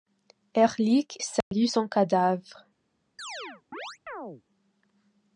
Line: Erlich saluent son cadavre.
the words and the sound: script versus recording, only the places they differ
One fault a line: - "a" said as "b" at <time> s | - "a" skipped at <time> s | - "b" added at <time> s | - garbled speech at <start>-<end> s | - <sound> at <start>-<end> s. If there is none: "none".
- dropout at 1.4-1.5 s
- chirp at 3.2-4.4 s